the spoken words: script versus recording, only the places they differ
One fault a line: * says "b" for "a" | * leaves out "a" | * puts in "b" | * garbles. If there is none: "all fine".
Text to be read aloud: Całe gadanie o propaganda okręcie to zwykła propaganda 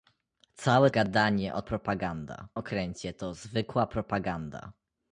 all fine